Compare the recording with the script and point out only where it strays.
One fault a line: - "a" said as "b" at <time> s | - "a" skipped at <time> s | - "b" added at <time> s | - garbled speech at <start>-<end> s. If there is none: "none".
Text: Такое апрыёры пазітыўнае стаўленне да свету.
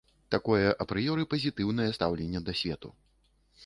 none